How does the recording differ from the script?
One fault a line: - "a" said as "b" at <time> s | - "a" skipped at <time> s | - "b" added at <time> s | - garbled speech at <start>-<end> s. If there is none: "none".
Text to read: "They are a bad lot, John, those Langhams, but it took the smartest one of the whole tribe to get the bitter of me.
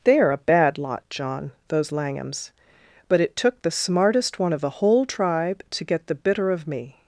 none